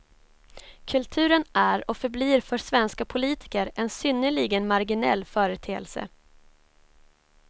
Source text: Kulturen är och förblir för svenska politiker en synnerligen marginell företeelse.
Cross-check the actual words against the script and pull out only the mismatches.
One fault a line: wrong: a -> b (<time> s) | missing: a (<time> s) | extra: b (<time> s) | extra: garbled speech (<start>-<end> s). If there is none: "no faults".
no faults